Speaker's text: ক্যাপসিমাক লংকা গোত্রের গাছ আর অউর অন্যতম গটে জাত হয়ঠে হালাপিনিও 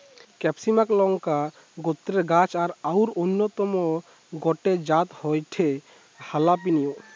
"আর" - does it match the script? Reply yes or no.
yes